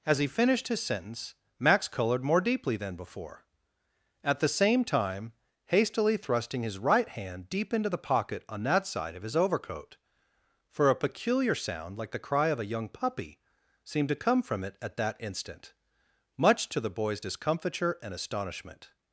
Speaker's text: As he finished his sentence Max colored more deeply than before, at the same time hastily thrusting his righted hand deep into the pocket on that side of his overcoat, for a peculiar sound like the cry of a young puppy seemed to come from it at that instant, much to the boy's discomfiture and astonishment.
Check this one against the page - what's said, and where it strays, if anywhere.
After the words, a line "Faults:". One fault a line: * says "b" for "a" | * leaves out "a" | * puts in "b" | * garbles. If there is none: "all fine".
As he finished his sentence Max colored more deeply than before, at the same time hastily thrusting his right hand deep into the pocket on that side of his overcoat, for a peculiar sound like the cry of a young puppy seemed to come from it at that instant, much to the boy's discomfiture and astonishment.
Faults:
* says "right" for "righted"